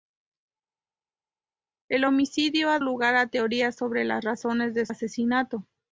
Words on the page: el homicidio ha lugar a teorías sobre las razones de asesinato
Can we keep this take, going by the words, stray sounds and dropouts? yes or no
yes